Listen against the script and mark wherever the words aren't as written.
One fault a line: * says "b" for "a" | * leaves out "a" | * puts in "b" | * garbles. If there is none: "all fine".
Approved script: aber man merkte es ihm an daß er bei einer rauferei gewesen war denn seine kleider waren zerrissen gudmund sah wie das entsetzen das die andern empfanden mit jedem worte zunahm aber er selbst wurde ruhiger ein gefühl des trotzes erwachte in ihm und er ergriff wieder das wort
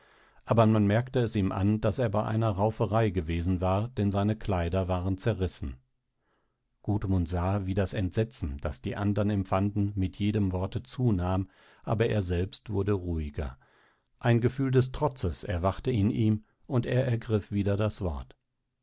all fine